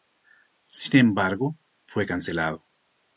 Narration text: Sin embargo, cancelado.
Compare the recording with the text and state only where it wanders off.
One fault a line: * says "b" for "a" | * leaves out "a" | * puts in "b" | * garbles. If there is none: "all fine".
* puts in "fue"